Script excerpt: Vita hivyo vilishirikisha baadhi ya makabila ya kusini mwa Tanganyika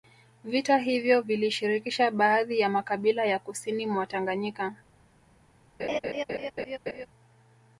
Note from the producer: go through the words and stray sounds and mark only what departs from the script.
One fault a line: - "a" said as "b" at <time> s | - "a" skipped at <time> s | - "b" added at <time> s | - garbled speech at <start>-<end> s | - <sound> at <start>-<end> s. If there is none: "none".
- laugh at 5.8-7.1 s